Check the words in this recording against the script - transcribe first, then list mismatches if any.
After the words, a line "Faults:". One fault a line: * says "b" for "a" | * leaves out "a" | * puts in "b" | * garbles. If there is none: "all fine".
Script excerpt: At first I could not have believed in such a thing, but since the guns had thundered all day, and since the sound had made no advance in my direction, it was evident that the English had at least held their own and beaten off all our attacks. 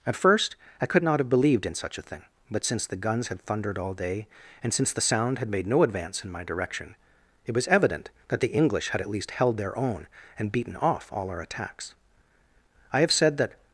At first I could not have believed in such a thing, but since the guns had thundered all day, and since the sound had made no advance in my direction, it was evident that the English had at least held their own and beaten off all our attacks. I have said that
Faults:
* puts in "I have said that"